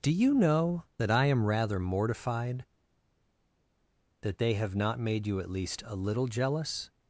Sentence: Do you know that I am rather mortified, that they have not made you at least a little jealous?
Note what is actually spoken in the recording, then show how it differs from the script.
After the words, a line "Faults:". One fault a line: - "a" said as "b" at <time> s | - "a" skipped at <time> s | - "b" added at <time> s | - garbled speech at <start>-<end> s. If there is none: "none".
Do you know that I am rather mortified, that they have not made you at least a little jealous?
Faults:
none